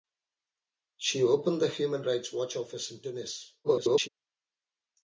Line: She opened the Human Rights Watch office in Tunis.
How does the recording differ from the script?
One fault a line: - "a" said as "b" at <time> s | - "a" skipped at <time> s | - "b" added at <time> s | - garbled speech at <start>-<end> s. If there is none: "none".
- garbled speech at 3.6-4.1 s